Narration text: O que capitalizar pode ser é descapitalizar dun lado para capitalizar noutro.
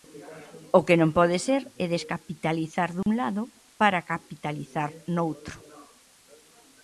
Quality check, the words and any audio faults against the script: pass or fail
fail